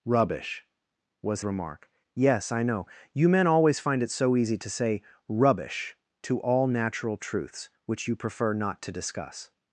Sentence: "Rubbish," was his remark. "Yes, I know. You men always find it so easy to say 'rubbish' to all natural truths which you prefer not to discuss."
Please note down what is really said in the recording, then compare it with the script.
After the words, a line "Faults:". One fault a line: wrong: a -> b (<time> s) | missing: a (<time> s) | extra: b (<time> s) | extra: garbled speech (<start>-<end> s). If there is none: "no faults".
"Rubbish," was remark. "Yes, I know. You men always find it so easy to say 'rubbish' to all natural truths which you prefer not to discuss."
Faults:
missing: his (1.4 s)